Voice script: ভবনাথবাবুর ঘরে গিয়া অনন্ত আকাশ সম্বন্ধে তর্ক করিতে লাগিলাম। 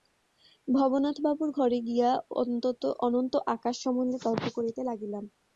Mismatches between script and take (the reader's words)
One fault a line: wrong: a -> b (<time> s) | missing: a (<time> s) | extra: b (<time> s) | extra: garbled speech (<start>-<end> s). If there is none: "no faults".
no faults